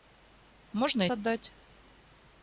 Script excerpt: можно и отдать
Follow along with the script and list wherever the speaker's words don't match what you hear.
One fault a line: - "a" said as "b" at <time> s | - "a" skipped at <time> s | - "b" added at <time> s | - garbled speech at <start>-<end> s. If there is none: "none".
none